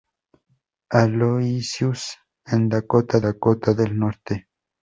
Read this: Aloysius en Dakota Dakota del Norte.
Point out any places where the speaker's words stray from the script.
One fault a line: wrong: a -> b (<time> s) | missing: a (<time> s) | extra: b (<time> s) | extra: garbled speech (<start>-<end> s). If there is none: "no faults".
no faults